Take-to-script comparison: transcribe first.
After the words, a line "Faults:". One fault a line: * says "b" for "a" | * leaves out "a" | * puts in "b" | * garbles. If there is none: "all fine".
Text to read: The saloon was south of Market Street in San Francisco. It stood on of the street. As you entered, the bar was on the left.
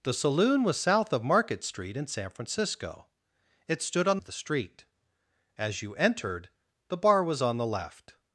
The saloon was south of Market Street in San Francisco. It stood on of the street. As you entered, the bar was on the left.
Faults:
all fine